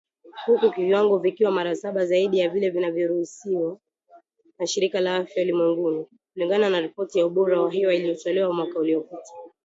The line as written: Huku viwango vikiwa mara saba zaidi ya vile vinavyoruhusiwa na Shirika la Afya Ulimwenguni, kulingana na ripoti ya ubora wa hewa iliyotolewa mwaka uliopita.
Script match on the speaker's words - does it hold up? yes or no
yes